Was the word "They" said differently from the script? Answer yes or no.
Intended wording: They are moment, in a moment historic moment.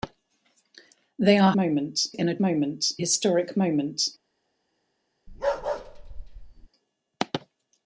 no